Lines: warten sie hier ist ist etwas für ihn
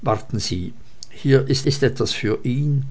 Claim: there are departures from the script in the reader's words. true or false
false